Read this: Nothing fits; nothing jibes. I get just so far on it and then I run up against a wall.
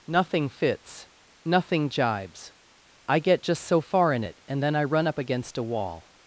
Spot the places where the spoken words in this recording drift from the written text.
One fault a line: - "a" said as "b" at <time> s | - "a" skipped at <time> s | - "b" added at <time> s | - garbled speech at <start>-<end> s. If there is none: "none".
- "on" said as "in" at 4.1 s